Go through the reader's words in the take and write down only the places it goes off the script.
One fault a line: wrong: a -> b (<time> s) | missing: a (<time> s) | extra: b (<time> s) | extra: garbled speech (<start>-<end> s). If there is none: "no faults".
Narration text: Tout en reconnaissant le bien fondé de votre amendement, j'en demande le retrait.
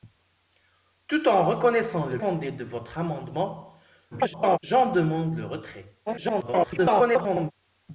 missing: bien (2.2 s)
extra: garbled speech (4.1-4.6 s)
extra: garbled speech (6.1-7.5 s)